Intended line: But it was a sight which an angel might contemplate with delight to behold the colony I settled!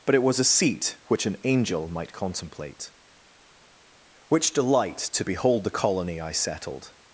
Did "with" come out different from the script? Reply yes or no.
yes